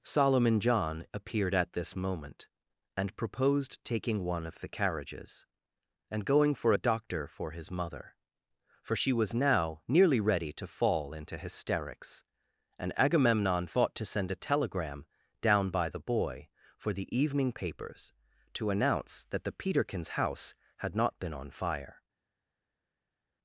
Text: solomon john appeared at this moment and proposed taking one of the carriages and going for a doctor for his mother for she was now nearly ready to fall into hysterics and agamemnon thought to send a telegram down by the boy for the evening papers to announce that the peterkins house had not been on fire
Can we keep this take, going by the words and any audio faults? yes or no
yes